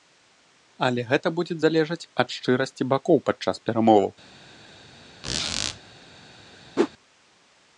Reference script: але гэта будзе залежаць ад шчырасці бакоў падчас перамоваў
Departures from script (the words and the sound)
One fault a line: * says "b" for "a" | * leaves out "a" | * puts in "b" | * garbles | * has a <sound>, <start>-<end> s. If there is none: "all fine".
* has a squeak, 5.2-5.8 s
* has a whoosh, 6.8-6.9 s